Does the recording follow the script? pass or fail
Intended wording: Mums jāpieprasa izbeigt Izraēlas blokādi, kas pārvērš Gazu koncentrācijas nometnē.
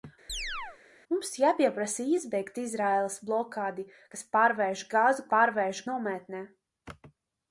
fail